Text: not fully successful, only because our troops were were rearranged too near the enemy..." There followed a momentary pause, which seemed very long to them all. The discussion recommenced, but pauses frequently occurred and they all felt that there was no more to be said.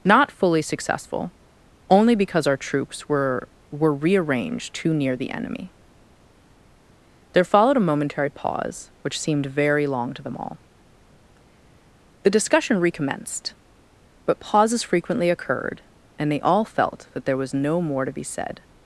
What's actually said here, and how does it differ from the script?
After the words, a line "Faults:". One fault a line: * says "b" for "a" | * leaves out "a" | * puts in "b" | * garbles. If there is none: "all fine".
not fully successful, only because our troops were were rearranged too near the enemy..." There followed a momentary pause, which seemed very long to them all. The discussion recommenced, but pauses frequently occurred and they all felt that there was no more to be said.
Faults:
all fine